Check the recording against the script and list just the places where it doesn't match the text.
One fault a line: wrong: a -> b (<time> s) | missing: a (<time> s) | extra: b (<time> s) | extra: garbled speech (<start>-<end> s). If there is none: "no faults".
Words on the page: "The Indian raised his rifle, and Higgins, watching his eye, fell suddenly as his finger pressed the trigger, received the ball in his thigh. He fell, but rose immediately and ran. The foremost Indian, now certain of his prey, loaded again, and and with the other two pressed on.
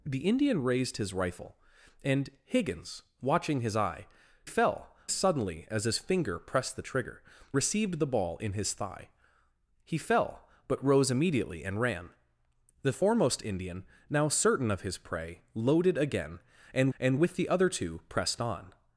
no faults